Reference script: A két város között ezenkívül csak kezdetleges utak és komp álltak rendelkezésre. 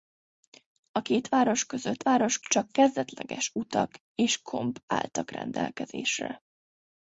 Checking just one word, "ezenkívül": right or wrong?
wrong